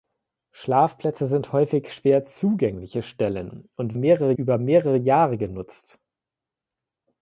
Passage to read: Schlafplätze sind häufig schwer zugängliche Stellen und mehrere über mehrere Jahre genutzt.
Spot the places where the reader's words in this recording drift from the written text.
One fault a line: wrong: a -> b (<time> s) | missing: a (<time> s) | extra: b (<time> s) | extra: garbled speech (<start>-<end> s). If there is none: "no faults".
no faults